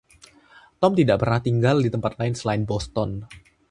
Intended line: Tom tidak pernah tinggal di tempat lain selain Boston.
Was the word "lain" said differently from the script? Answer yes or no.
no